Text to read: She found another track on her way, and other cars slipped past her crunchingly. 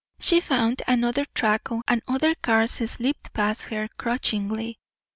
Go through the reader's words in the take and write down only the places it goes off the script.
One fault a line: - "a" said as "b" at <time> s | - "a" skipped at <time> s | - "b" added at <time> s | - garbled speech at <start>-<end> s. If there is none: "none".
- "her way" skipped at 1.8 s